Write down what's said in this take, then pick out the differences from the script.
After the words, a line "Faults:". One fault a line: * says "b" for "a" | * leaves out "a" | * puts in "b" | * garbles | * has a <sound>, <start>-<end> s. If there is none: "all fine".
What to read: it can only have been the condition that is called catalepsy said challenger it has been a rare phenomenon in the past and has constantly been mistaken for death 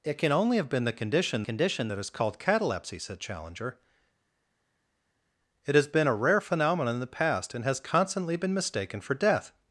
it can only have been the condition condition that is called catalepsy said challenger it has been a rare phenomenon in the past and has constantly been mistaken for death
Faults:
* puts in "condition"